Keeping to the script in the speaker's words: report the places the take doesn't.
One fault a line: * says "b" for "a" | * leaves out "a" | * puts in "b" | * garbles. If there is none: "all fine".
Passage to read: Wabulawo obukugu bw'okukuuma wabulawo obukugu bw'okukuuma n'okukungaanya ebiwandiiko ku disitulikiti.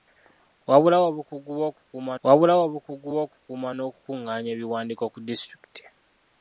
all fine